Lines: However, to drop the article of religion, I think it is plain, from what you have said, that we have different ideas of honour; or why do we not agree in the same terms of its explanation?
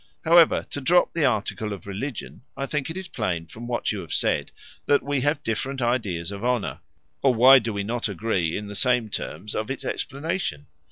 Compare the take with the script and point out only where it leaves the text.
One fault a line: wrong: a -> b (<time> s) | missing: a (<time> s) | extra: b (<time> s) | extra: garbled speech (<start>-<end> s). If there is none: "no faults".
no faults